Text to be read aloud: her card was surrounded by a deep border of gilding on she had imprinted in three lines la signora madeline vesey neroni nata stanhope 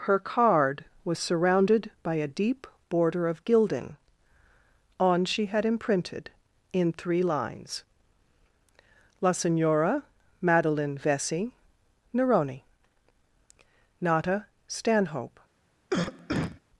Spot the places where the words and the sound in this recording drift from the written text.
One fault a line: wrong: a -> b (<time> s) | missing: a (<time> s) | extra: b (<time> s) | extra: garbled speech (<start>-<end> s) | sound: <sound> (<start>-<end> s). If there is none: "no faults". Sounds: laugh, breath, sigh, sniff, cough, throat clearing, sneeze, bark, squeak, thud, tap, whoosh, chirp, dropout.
sound: cough (15.9-16.6 s)